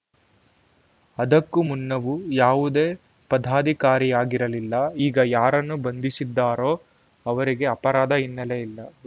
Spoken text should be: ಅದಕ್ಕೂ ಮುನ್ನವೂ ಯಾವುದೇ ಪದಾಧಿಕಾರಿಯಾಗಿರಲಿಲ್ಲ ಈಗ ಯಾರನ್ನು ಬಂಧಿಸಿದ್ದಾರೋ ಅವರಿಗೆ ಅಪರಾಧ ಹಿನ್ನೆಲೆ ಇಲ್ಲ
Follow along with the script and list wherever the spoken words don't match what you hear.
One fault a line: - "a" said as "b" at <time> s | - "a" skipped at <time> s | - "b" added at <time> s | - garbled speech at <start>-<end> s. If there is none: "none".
none